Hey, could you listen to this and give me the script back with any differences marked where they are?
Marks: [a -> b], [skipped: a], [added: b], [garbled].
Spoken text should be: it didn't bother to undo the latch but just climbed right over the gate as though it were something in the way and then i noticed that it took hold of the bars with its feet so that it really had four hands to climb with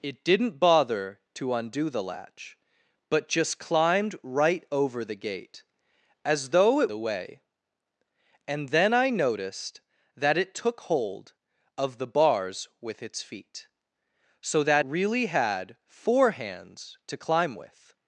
it didn't bother to undo the latch but just climbed right over the gate as though it [skipped: were something in] the way and then i noticed that it took hold of the bars with its feet so that [skipped: it] really had four hands to climb with